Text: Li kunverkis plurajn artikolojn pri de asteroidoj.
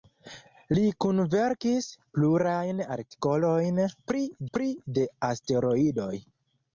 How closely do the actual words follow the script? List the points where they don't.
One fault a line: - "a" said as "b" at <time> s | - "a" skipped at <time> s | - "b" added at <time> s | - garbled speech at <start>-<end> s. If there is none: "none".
- "pri" added at 4.5 s